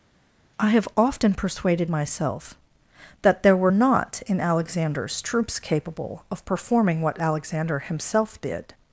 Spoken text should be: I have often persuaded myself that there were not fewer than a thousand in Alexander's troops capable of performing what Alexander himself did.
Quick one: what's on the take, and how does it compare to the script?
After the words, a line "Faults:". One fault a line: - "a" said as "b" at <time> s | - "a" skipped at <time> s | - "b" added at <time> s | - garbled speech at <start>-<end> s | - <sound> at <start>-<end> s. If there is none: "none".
I have often persuaded myself that there were not in Alexander's troops capable of performing what Alexander himself did.
Faults:
- "fewer than a thousand" skipped at 4.2 s